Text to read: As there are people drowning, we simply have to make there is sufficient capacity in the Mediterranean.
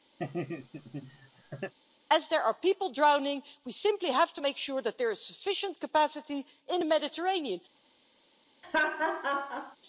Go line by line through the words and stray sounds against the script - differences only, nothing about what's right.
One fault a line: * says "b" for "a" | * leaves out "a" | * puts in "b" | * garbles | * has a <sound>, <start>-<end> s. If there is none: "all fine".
* has a laugh, 0.2-1.7 s
* puts in "sure that"
* has a laugh, 8.6-9.8 s